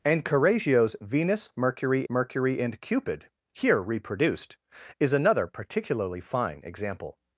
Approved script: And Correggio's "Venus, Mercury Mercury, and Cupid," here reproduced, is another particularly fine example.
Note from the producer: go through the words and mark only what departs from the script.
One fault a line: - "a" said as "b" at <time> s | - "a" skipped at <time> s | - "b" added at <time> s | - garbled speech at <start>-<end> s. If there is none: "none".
none